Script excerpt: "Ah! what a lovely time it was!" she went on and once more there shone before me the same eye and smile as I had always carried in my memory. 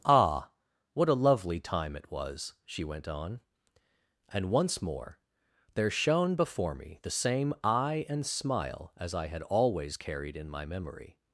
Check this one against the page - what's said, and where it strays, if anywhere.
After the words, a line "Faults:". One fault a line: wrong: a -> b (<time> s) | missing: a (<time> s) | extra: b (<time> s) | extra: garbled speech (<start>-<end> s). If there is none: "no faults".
"Ah! what a lovely time it was!" she went on and once more there shone before me the same eye and smile as I had always carried in my memory.
Faults:
no faults